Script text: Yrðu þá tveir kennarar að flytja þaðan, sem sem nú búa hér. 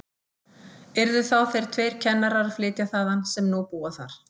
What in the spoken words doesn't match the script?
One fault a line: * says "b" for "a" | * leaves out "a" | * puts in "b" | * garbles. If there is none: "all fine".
* puts in "þeir"
* leaves out "sem"
* says "þar" for "hér"